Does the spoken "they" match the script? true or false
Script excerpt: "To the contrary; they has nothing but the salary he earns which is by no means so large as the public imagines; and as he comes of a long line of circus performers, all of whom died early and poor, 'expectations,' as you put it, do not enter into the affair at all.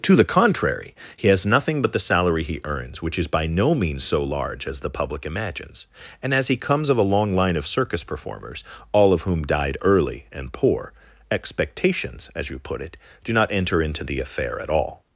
false